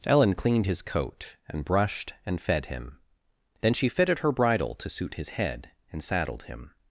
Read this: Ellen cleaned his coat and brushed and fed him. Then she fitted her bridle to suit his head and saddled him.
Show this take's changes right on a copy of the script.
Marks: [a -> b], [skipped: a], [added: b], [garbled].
Ellen cleaned his coat and brushed and fed him. Then she fitted her bridle to suit his head and saddled him.